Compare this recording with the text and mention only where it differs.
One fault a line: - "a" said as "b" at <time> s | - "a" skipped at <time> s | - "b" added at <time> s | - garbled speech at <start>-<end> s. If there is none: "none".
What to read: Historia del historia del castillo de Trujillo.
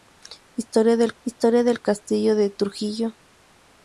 none